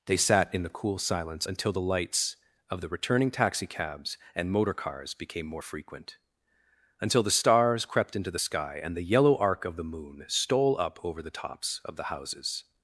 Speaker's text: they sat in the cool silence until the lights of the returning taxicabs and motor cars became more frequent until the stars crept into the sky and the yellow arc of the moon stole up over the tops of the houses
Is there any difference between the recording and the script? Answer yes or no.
no